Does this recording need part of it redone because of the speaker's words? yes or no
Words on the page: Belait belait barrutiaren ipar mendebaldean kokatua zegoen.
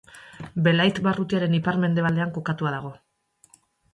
yes